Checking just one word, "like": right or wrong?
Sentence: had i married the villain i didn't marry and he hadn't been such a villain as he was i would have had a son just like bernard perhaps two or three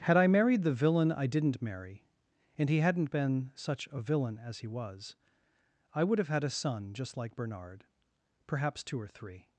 right